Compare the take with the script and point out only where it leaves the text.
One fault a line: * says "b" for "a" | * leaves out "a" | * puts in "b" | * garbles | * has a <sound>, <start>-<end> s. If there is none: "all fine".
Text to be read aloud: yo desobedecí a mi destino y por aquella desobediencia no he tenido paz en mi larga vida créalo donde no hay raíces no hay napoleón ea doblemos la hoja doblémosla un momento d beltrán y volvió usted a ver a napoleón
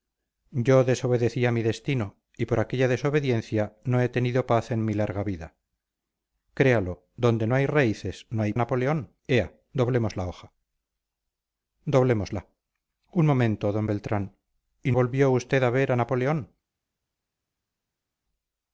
all fine